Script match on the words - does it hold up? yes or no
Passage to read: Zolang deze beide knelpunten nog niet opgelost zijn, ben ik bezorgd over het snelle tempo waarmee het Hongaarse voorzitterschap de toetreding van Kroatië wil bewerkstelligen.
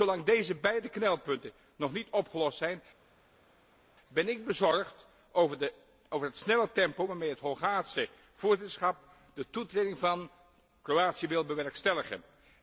yes